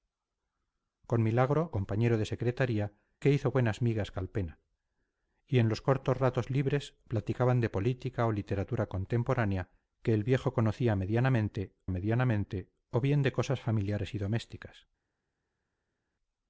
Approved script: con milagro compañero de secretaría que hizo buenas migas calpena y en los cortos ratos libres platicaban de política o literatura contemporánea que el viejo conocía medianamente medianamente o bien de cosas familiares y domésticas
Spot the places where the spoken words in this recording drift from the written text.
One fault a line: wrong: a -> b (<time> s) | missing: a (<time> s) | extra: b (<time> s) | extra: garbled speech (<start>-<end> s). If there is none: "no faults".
no faults